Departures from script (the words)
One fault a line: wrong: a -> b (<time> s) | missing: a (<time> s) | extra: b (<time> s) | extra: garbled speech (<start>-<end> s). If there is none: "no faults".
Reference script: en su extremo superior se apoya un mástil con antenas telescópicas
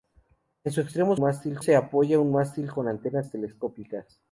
wrong: superior -> mástil (1.2 s)